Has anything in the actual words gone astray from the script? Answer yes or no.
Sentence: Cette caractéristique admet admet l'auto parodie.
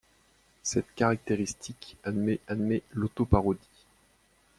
no